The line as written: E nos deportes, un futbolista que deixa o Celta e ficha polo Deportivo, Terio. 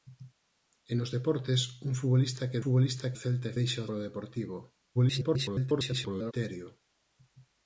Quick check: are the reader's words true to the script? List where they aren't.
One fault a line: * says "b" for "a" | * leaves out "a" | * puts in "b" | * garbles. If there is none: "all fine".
* says "futbolista" for "deixa"
* says "deixa" for "ficha"
* garbles